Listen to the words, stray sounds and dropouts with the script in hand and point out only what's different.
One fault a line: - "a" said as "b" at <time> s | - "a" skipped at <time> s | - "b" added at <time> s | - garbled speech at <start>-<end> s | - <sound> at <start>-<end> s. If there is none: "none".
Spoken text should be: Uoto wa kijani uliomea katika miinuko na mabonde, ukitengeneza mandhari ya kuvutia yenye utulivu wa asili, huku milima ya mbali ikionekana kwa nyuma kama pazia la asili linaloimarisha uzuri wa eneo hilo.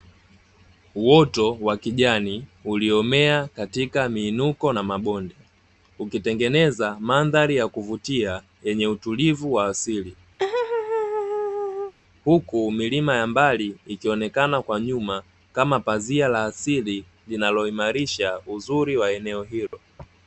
- laugh at 10.4-11.9 s
- dropout at 19.7-19.7 s